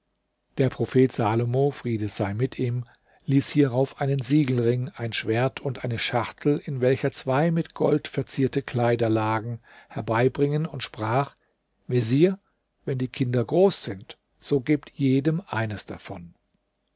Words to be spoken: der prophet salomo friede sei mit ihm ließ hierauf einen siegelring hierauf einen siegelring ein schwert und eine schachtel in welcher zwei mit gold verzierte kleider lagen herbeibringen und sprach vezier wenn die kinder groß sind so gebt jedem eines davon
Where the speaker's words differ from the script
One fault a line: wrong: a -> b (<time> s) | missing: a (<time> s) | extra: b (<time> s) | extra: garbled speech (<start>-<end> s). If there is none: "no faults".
missing: hierauf einen siegelring (4.9 s)